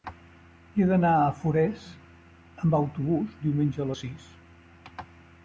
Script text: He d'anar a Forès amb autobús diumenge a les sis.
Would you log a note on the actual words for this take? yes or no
no